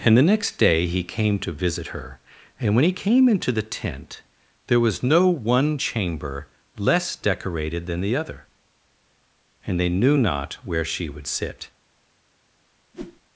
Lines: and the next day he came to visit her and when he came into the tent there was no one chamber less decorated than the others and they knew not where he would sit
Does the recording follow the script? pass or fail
fail